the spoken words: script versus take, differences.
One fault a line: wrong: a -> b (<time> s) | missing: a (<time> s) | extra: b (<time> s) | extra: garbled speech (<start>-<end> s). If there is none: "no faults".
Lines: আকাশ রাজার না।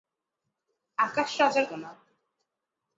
no faults